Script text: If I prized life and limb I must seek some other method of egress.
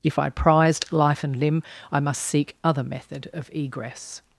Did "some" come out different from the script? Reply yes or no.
yes